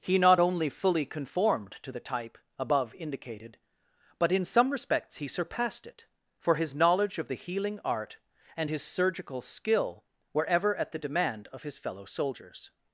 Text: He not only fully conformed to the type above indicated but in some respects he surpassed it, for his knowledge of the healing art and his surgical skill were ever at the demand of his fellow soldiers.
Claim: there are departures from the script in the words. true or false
false